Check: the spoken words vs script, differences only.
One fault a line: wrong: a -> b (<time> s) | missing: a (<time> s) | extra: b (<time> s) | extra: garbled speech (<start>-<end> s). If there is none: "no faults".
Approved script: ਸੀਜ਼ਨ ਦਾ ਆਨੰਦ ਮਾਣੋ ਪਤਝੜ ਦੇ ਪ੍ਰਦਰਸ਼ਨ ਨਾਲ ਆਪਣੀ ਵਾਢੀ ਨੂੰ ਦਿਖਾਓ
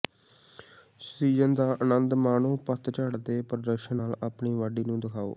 no faults